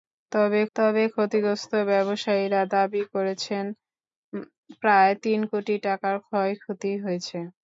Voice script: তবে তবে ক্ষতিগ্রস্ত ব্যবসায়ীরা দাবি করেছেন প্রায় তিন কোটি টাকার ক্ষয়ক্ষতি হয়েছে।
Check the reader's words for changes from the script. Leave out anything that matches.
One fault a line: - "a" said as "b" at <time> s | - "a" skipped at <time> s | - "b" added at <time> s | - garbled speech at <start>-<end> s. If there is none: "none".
none